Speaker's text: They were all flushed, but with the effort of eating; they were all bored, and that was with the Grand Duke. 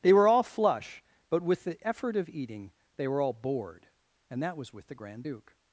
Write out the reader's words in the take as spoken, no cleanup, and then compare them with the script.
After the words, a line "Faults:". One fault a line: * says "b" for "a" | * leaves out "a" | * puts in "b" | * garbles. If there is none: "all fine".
They were all flush, but with the effort of eating; they were all bored, and that was with the Grand Duke.
Faults:
* says "flush" for "flushed"